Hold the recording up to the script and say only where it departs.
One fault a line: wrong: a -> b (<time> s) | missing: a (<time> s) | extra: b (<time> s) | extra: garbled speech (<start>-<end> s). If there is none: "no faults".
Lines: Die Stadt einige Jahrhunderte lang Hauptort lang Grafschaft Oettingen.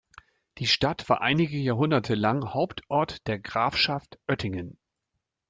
extra: war (1.1 s)
wrong: lang -> der (3.3 s)